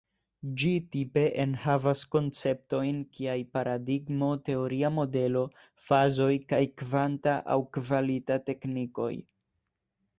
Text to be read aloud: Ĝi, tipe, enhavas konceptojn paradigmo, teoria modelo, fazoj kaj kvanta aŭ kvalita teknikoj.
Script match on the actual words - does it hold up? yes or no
no